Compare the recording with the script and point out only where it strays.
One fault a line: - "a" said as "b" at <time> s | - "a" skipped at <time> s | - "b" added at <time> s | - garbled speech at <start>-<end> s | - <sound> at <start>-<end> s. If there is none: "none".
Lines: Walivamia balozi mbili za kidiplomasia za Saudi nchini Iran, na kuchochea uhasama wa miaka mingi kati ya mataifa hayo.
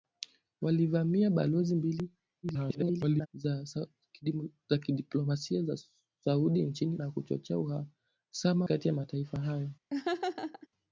- garbled speech at 2.4-3.3 s
- "Iran" skipped at 7.0 s
- "wa miaka mingi" skipped at 8.7 s
- laugh at 9.9-10.7 s